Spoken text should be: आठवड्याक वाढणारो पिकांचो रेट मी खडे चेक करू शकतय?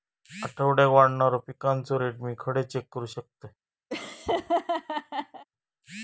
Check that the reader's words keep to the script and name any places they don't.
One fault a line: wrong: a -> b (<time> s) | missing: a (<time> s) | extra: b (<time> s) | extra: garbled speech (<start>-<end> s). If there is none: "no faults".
no faults